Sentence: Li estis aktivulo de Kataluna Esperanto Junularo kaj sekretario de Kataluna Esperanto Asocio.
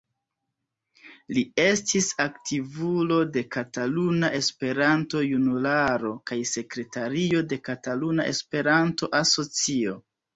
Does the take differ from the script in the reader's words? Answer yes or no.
no